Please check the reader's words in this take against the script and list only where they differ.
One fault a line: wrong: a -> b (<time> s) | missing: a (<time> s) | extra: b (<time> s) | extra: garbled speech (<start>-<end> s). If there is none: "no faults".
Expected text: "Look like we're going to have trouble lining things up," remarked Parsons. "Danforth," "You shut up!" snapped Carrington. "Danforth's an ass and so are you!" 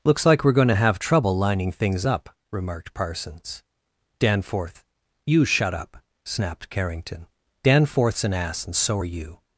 wrong: Look -> Looks (0.0 s)